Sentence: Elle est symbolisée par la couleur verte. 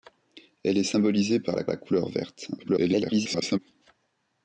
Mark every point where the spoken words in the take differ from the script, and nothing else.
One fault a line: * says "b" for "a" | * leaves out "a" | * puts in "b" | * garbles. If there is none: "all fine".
* puts in "la"
* garbles